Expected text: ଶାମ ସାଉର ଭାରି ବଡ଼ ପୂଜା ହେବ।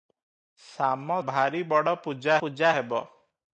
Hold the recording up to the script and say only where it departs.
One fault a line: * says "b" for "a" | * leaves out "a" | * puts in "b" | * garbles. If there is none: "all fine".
* leaves out "ସାଉର"
* puts in "ପୂଜା"